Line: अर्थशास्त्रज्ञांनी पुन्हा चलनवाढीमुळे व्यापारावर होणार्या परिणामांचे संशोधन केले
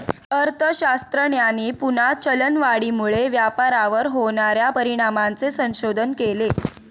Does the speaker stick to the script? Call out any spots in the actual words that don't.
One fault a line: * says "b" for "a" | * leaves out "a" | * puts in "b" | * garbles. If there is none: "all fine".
all fine